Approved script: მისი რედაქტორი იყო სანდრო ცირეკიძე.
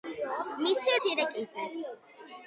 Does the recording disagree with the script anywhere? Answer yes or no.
yes